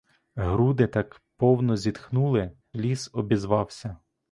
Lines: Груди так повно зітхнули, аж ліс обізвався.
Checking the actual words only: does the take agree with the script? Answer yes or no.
no